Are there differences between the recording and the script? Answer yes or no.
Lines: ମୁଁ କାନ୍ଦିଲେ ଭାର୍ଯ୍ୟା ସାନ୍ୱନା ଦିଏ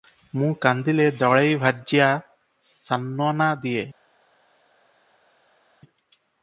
yes